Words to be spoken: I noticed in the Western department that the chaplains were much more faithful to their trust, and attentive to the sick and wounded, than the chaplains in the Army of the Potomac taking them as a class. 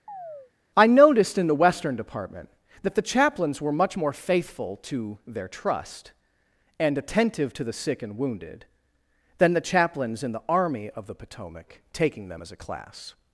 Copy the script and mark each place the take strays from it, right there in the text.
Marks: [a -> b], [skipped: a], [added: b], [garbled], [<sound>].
[chirp] I noticed in the Western department that the chaplains were much more faithful to their trust, and attentive to the sick and wounded, than the chaplains in the Army of the Potomac taking them as a class.